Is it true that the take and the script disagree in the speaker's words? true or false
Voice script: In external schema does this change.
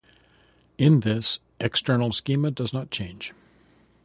true